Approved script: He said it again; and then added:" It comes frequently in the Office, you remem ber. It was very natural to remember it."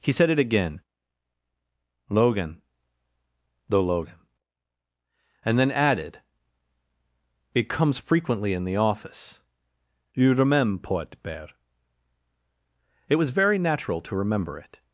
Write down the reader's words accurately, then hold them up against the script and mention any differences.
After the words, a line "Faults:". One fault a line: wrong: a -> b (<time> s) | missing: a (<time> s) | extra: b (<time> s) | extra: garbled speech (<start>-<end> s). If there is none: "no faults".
He said it again; logan the logan and then added:" It comes frequently in the Office, you remember port bear. It was very natural to remember it."
Faults:
extra: logan the logan (2.1 s)
wrong: remem ber -> remember port bear (10.3 s)